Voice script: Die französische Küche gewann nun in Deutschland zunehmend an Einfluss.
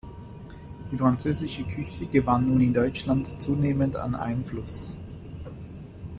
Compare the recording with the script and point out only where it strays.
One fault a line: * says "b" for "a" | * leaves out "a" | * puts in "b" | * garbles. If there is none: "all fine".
all fine